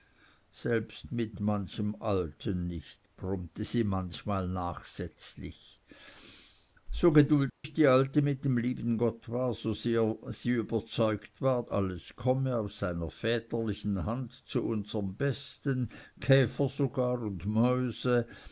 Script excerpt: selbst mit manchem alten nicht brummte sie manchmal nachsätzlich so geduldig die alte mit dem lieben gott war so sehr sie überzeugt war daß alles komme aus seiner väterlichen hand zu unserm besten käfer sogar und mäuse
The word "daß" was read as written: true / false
false